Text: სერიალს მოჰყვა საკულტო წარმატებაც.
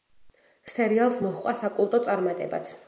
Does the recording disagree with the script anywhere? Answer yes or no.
no